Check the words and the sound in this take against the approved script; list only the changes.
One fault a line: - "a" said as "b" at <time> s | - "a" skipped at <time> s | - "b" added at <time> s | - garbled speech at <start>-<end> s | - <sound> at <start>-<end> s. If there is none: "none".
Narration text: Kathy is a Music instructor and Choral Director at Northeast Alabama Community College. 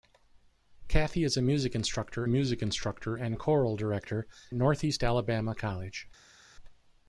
- "Music instructor" added at 2.3 s
- "at" skipped at 4.3 s
- "Community" skipped at 5.5 s